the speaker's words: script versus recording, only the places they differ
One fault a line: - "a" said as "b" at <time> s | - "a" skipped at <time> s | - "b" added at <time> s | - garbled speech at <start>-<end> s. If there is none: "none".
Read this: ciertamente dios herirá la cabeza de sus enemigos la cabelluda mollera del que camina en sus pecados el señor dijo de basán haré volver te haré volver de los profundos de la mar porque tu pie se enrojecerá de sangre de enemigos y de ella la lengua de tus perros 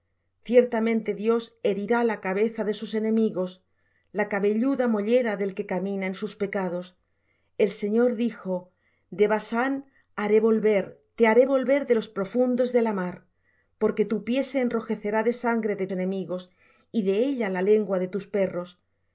none